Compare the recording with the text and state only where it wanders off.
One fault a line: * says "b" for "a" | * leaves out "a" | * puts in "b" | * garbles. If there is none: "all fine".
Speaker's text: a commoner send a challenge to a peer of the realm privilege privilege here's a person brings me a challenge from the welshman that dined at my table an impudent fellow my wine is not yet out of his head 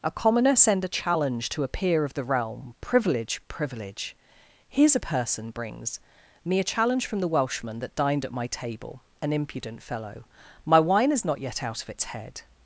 * says "its" for "his"